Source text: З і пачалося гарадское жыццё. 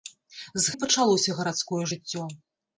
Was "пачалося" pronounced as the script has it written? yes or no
yes